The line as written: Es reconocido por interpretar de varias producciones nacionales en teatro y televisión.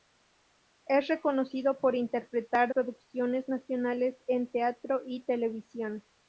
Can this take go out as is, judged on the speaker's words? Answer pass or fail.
fail